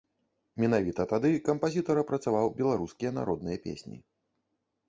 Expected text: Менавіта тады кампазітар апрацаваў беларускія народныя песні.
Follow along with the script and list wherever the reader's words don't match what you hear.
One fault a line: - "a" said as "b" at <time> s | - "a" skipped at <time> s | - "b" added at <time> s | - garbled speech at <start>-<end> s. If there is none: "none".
none